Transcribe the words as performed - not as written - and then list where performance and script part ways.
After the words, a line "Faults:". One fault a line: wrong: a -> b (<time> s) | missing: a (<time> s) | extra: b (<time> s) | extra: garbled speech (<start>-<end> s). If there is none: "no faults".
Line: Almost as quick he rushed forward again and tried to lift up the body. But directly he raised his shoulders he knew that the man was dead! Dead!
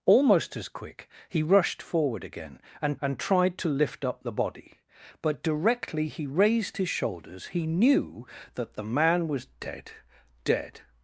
Almost as quick he rushed forward again and and tried to lift up the body. But directly he raised his shoulders he knew that the man was dead! Dead!
Faults:
extra: and (3.0 s)